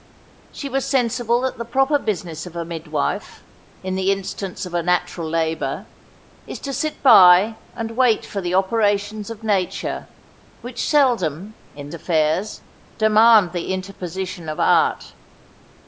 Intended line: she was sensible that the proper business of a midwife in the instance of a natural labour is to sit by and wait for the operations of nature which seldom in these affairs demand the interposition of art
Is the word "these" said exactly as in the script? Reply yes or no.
no